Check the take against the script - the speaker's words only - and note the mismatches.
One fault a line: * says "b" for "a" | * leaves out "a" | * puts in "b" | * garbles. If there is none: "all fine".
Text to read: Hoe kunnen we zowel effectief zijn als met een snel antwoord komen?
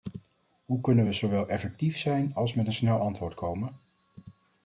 all fine